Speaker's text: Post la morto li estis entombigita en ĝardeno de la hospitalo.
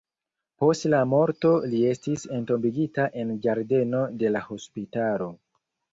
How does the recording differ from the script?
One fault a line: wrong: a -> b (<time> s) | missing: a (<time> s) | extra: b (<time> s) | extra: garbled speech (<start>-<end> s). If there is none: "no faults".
no faults